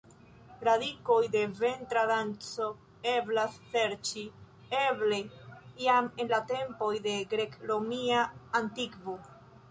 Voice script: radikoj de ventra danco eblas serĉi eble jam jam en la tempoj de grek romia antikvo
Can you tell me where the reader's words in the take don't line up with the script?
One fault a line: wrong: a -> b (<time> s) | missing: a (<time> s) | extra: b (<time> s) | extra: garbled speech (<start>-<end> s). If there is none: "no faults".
missing: jam (6.1 s)